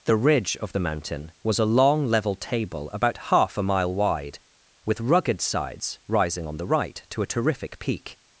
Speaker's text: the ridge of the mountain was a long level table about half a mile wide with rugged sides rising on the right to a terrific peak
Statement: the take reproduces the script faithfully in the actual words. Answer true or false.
true